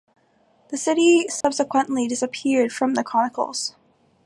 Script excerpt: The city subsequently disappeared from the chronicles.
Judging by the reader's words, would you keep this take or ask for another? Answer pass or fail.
pass